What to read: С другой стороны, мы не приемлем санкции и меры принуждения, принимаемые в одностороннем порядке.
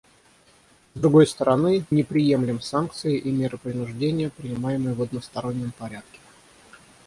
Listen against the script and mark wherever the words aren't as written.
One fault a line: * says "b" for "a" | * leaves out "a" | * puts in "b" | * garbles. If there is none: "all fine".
* leaves out "мы"